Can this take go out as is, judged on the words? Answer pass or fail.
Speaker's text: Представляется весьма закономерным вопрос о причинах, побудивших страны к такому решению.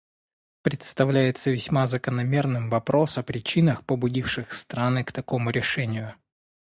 pass